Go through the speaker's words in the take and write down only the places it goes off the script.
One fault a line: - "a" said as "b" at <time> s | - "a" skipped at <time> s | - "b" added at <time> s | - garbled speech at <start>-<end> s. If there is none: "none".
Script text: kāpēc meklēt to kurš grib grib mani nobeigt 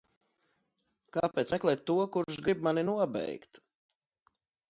- "grib" skipped at 2.6 s